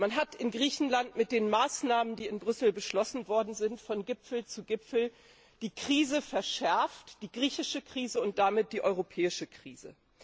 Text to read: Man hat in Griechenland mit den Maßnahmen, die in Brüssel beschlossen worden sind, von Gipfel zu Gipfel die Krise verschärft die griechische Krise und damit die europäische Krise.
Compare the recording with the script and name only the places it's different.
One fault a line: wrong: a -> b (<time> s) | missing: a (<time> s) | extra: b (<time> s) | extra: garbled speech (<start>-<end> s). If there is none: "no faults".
no faults